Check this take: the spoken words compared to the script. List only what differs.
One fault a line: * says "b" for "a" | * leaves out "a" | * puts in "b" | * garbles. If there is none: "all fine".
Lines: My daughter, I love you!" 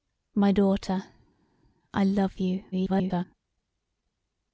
* garbles